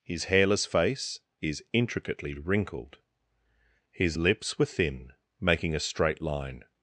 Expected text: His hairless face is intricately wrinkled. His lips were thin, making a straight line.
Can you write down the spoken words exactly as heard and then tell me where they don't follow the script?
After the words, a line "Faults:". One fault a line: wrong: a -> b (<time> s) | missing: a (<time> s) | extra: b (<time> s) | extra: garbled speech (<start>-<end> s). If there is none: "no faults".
His hairless face is intricately wrinkled. His lips were thin, making a straight line.
Faults:
no faults